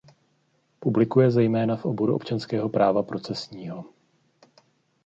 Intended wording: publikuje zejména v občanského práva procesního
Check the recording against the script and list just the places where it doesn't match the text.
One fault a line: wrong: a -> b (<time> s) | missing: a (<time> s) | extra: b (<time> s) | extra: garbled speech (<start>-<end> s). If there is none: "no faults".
extra: oboru (1.9 s)